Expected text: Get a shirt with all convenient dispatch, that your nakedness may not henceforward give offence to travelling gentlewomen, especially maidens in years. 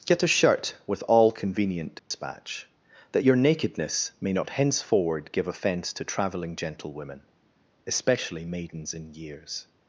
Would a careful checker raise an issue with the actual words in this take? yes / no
no